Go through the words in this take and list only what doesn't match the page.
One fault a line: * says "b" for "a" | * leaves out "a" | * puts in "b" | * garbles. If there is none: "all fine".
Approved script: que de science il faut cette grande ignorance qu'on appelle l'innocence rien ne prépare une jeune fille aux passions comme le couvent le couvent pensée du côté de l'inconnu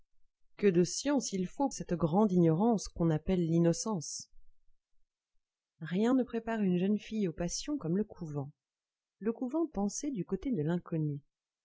all fine